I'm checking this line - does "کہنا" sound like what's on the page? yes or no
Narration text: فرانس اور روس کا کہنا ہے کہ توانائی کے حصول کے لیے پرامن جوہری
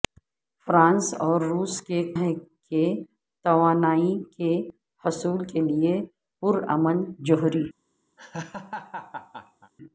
no